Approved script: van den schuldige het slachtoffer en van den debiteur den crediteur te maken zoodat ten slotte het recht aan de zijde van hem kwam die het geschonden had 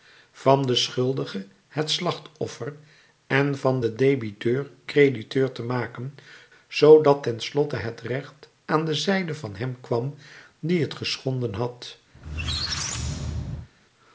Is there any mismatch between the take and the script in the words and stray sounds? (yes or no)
yes